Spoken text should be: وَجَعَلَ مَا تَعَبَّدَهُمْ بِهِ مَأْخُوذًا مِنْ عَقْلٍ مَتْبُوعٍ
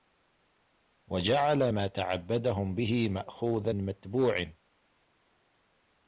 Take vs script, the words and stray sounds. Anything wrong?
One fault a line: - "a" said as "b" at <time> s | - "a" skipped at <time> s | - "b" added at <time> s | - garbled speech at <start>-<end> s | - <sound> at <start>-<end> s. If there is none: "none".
- "مِنْ عَقْلٍ" skipped at 3.7 s